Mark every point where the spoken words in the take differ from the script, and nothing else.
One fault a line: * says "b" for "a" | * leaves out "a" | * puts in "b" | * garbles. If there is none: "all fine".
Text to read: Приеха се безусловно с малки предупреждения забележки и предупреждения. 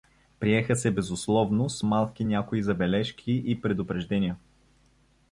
* says "някои" for "предупреждения"